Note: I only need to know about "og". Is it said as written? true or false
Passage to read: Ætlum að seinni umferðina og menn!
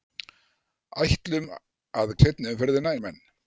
true